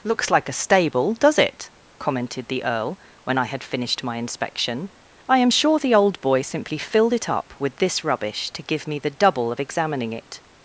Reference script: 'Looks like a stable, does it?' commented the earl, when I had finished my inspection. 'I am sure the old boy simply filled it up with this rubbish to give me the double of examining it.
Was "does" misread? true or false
false